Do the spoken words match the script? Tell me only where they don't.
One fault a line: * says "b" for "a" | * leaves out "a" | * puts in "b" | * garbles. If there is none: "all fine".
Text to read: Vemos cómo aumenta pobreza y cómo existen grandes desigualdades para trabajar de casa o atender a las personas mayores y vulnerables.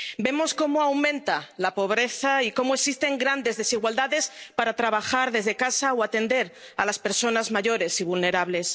* puts in "la"
* says "desde" for "de"